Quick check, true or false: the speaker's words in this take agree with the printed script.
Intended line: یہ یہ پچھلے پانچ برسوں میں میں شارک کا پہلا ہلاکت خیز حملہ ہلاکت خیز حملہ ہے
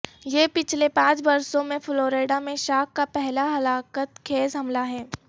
false